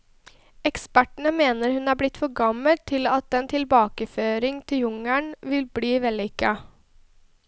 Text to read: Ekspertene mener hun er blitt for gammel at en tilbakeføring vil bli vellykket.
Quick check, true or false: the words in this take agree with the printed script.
false